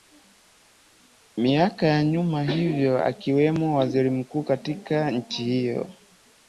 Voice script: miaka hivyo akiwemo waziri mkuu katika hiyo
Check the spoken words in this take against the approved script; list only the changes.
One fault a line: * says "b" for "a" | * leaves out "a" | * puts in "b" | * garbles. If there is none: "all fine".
* puts in "ya nyuma"
* puts in "nchi"